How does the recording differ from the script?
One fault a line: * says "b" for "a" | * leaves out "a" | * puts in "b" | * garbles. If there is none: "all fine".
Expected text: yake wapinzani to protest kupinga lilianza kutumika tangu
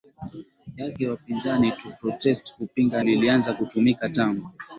all fine